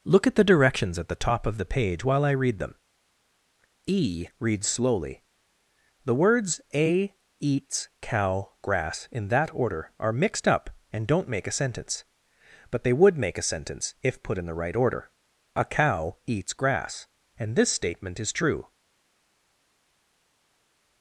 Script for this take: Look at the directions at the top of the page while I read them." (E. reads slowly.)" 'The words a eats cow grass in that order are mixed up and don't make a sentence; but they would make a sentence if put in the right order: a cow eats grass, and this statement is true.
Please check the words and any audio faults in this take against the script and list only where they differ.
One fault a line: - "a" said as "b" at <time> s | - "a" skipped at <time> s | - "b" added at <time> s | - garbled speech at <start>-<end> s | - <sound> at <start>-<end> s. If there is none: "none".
none